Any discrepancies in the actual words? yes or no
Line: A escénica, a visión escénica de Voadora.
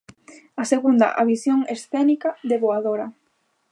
yes